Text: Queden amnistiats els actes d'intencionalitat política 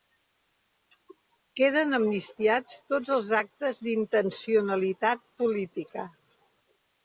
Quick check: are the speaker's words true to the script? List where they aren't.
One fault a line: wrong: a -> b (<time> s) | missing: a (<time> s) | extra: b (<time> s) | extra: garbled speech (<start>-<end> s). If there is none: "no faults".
extra: tots (3.0 s)